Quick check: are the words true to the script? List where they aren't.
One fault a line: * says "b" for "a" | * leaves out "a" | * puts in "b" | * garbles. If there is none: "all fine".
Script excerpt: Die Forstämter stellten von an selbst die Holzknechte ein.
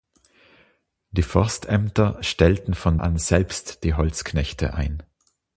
all fine